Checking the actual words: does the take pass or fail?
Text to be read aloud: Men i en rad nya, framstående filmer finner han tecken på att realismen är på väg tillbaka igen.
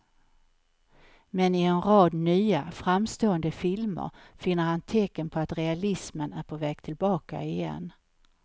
pass